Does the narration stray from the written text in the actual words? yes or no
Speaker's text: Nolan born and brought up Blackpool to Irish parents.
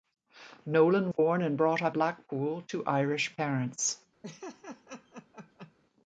no